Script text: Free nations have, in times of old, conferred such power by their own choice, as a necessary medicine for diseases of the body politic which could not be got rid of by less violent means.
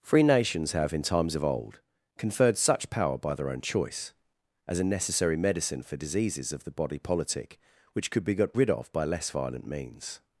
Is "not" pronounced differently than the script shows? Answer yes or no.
yes